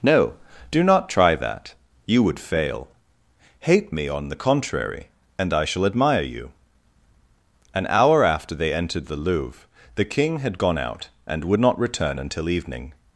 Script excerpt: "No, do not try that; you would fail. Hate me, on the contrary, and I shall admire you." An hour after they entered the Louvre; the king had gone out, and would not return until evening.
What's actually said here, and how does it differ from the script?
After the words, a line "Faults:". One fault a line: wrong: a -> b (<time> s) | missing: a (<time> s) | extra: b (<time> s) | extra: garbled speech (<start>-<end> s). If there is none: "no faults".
"No, do not try that; you would fail. Hate me, on the contrary, and I shall admire you." An hour after they entered the Louvre; the king had gone out, and would not return until evening.
Faults:
no faults